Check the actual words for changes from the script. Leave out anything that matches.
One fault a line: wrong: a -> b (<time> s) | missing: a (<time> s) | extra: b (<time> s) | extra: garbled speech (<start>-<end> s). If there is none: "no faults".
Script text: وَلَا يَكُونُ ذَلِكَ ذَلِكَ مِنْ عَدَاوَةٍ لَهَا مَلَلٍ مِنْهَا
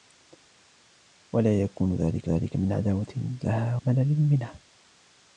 no faults